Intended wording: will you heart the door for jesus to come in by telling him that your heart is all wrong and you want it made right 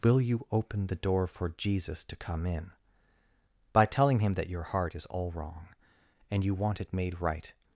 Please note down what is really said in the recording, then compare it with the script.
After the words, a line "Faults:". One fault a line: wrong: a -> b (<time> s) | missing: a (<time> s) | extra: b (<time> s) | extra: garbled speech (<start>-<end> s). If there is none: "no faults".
will you open the door for jesus to come in by telling him that your heart is all wrong and you want it made right
Faults:
wrong: heart -> open (0.5 s)